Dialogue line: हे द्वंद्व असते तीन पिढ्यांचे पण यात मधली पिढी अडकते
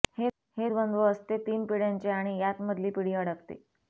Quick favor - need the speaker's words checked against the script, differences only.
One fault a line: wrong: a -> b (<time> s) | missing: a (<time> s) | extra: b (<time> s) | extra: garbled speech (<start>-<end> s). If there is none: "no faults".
wrong: पण -> आणि (2.1 s)